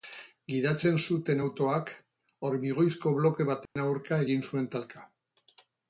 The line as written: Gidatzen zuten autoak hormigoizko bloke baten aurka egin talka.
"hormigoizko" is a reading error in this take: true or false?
false